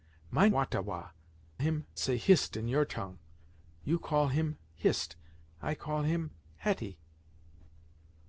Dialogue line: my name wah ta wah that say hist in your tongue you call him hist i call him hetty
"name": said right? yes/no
no